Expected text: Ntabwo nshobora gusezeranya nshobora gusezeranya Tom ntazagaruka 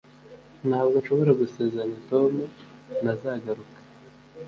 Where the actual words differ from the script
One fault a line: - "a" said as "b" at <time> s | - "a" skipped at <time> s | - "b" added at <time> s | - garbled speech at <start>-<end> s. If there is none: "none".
- "nshobora gusezeranya" skipped at 2.0 s